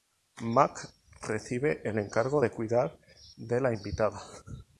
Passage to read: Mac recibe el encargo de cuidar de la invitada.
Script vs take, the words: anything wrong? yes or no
no